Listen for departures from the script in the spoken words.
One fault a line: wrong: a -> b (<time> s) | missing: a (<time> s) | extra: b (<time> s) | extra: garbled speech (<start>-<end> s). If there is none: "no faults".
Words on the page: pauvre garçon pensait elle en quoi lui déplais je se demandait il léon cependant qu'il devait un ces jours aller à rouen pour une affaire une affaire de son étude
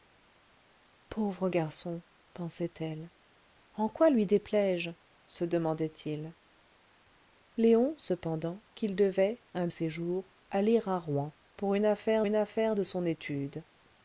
no faults